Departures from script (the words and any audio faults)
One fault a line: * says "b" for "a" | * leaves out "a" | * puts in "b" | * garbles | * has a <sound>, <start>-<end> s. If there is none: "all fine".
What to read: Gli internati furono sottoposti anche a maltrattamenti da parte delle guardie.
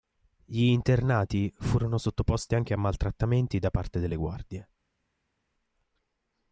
all fine